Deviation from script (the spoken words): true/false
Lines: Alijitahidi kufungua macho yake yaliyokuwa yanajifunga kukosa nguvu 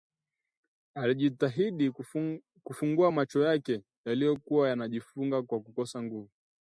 true